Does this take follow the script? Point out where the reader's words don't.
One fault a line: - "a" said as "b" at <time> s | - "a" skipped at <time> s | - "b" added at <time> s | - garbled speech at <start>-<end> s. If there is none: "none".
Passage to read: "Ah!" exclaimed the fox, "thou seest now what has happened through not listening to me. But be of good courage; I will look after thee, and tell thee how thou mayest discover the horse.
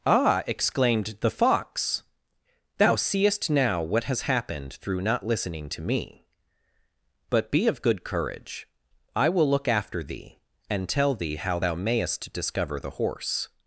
none